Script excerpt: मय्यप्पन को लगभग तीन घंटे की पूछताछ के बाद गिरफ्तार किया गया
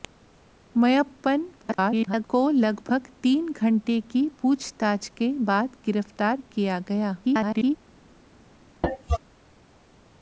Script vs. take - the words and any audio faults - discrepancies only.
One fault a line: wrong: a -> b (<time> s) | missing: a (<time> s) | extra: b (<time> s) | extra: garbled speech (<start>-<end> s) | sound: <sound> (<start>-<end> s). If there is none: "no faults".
extra: garbled speech (1.6-2.3 s)
extra: garbled speech (7.2-7.8 s)
sound: cough (8.8-9.2 s)